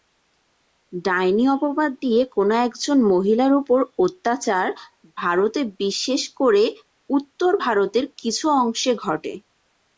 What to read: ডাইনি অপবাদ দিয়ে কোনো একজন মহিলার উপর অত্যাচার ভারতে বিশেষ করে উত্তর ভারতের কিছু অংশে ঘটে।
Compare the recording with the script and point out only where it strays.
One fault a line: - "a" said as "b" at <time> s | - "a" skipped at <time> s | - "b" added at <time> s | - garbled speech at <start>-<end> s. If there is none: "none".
none